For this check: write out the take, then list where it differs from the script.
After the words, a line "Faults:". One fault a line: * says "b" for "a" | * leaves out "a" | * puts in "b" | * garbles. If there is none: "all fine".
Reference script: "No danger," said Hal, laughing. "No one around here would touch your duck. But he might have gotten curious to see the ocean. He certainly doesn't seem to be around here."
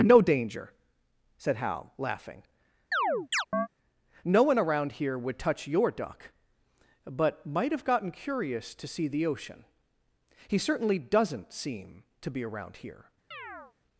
"No danger," said Hal, laughing. "No one around here would touch your duck. But might have gotten curious to see the ocean. He certainly doesn't seem to be around here."
Faults:
* leaves out "he"